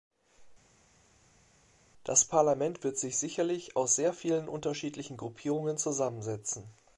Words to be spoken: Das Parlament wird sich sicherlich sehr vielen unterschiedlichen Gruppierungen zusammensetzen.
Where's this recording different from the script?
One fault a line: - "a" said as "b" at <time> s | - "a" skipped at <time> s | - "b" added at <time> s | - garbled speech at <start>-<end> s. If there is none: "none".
- "aus" added at 3.8 s